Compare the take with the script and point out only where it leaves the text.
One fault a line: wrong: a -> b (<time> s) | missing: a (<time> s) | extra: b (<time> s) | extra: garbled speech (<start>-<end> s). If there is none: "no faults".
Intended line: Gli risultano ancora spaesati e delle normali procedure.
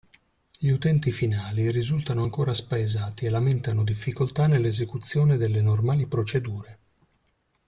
extra: utenti finali (0.7 s)
extra: lamentano difficoltà nell'esecuzione (3.3 s)